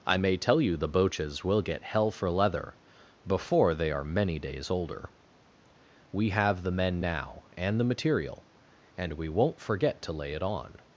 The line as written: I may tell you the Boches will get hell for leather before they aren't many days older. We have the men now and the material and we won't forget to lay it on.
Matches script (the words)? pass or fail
fail